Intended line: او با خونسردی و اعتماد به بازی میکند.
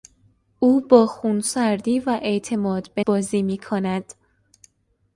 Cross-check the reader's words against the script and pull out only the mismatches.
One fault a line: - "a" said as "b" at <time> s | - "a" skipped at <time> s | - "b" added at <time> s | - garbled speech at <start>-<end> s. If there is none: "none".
none